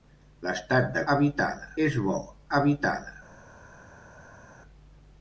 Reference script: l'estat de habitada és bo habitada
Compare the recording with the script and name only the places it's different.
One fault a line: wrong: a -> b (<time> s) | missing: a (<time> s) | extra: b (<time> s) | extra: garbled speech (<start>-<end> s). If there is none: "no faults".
no faults